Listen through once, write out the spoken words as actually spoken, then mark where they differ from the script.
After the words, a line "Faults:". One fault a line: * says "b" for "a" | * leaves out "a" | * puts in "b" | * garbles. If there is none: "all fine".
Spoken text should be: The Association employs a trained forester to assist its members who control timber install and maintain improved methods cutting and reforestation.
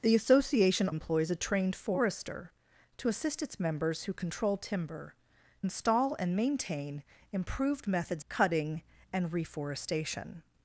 The Association employs a trained forester to assist its members who control timber install and maintain improved methods cutting and reforestation.
Faults:
all fine